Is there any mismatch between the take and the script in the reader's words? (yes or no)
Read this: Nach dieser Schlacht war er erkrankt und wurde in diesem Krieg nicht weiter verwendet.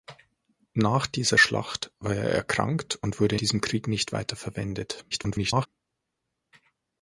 yes